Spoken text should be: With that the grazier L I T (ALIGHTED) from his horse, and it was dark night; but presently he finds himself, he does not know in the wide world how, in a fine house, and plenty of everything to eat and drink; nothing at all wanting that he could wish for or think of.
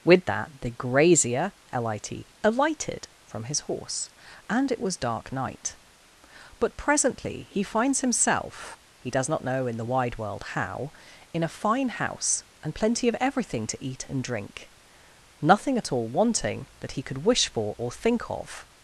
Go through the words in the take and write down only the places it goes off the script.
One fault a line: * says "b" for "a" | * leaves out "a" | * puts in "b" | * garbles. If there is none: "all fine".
all fine